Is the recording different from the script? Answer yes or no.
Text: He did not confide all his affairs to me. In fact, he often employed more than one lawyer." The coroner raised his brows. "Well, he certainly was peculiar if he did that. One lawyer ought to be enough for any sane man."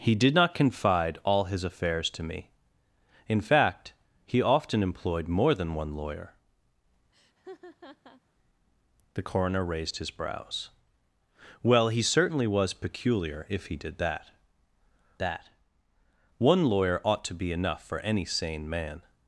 yes